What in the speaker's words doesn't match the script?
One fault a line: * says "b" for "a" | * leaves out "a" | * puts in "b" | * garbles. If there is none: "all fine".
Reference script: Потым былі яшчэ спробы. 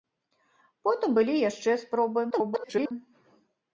* garbles